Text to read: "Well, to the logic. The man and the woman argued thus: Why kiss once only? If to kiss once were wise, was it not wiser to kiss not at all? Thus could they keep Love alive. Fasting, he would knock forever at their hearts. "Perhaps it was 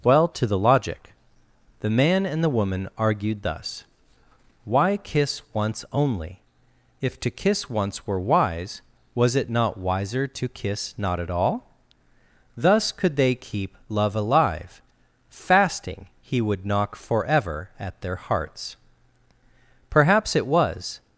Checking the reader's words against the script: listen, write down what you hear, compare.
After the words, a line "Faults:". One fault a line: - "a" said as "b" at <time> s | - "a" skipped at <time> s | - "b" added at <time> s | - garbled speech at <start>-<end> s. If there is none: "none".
"Well, to the logic. The man and the woman argued thus: Why kiss once only? If to kiss once were wise, was it not wiser to kiss not at all? Thus could they keep Love alive. Fasting, he would knock forever at their hearts. "Perhaps it was
Faults:
none